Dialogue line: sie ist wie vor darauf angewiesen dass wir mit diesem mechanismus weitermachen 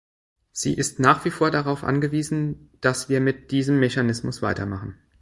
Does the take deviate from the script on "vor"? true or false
false